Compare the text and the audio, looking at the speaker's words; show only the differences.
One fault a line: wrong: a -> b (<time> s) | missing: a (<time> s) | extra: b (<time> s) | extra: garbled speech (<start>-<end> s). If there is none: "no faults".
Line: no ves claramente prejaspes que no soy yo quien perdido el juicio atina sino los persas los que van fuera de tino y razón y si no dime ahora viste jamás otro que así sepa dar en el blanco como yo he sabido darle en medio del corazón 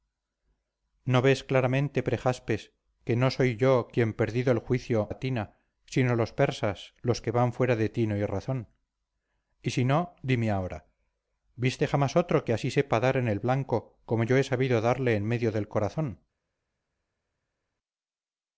no faults